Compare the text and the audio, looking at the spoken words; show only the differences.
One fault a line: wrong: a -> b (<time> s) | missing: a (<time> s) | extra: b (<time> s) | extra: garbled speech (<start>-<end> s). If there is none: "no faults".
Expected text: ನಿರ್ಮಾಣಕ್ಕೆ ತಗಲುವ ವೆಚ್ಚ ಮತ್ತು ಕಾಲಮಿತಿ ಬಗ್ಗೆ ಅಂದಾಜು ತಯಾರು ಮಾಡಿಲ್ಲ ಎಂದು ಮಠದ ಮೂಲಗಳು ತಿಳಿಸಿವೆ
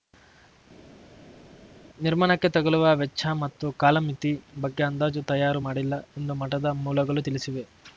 no faults